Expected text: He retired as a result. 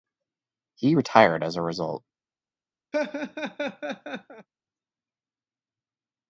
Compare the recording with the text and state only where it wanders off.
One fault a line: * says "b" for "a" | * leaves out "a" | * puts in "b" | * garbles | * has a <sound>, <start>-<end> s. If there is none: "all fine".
* has a laugh, 2.9-4.5 s